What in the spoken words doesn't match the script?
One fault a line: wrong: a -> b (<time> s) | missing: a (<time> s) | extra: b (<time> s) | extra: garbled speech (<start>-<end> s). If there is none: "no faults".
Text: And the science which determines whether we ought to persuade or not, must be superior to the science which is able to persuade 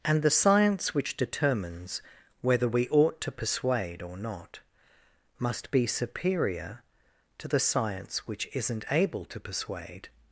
wrong: is -> isn't (8.5 s)